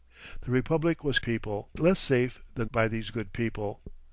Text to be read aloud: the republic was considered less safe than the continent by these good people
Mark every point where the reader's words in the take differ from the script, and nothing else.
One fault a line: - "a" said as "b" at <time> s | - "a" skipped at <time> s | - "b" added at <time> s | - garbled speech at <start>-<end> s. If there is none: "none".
- "considered" said as "people" at 1.2 s
- "the continent" skipped at 2.7 s